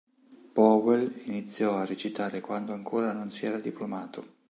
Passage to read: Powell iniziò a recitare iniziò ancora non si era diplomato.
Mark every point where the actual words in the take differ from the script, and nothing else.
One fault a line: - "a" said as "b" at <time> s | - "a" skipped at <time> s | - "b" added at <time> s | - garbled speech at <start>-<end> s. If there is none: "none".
- "iniziò" said as "quando" at 2.4 s